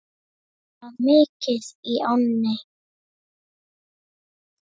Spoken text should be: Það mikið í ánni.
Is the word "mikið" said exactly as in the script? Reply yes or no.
yes